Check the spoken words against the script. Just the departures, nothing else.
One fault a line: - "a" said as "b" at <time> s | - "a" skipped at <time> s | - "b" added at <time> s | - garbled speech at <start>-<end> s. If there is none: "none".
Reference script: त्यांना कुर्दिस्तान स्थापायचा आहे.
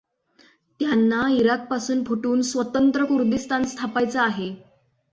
- "इराकपासून फुटून स्वतंत्र" added at 1.3 s